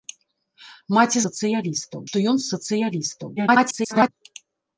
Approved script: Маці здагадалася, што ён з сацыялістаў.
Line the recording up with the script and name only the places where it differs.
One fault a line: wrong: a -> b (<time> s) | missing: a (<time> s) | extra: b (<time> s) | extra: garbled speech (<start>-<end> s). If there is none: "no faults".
wrong: здагадалася -> сацыялістаў (1.3 s)
extra: garbled speech (3.4-4.1 s)